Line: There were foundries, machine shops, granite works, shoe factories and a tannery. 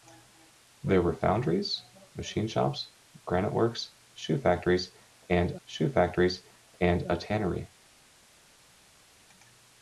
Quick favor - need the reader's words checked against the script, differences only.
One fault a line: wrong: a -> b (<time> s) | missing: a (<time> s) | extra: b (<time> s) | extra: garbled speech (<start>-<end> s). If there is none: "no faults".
extra: shoe factories and (5.7 s)